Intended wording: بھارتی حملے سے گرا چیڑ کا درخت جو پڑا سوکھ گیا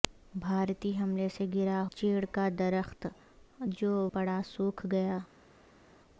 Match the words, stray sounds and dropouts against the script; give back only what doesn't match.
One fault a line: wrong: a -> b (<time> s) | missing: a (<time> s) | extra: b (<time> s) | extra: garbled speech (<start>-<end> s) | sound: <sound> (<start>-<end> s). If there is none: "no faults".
no faults